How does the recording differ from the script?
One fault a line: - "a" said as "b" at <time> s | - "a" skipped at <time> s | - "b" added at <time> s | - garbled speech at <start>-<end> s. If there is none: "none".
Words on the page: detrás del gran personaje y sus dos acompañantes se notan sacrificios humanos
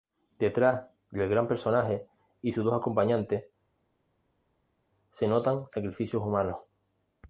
none